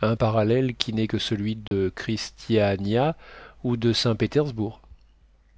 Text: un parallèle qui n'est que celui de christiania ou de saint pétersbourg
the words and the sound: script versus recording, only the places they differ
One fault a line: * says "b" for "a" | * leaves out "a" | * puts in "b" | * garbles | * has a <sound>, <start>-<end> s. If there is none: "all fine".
* has a dropout, 1.7-1.7 s